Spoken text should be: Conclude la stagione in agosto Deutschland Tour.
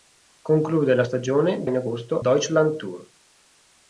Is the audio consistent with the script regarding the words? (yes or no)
yes